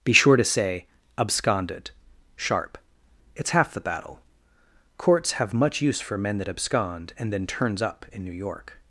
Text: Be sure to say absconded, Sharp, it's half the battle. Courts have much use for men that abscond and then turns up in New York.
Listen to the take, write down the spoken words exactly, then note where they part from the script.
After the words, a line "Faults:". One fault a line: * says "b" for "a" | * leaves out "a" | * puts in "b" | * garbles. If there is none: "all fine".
Be sure to say absconded, Sharp, it's half the battle. Courts have much use for men that abscond and then turns up in New York.
Faults:
all fine